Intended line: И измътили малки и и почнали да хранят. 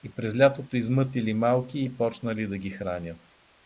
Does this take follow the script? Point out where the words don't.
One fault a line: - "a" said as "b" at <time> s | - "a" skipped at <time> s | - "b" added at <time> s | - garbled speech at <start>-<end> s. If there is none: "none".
- "през лятото" added at 0.1 s
- "и" skipped at 2.0 s
- "ги" added at 2.6 s